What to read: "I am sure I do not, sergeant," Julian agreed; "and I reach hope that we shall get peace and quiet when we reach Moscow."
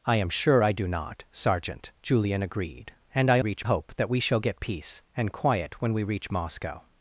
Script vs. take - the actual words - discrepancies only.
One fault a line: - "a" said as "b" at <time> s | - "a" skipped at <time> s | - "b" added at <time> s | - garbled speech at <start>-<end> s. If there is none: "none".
none